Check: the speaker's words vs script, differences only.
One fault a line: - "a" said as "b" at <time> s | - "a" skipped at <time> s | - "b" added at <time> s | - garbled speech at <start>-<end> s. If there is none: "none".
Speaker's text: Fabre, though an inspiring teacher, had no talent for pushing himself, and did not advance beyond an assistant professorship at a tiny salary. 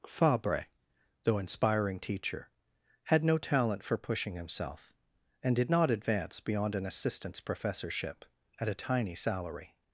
- "an" skipped at 1.4 s
- "assistant" said as "assistants" at 6.9 s